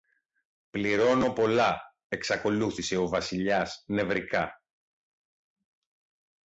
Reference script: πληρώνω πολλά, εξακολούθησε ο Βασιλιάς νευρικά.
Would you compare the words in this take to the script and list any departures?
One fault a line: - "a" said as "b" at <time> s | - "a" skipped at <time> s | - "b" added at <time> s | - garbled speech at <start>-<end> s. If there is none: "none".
none